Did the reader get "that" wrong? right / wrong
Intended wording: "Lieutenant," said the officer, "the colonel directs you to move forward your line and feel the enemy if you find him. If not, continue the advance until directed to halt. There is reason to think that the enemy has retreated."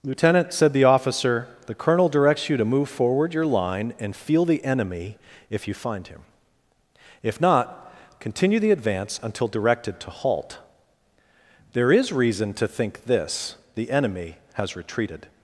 wrong